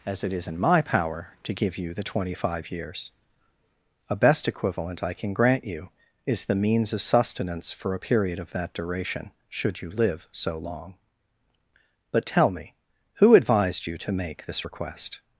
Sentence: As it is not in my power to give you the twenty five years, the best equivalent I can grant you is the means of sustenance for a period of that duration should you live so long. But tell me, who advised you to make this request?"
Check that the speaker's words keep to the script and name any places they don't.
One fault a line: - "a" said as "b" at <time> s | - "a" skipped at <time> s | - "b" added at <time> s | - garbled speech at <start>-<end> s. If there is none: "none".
- "not" skipped at 0.5 s
- "the" said as "a" at 4.1 s